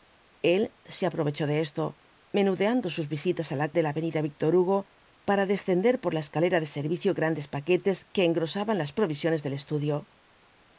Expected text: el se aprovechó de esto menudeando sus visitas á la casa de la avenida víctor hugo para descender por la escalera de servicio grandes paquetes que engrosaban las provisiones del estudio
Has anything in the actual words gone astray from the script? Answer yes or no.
yes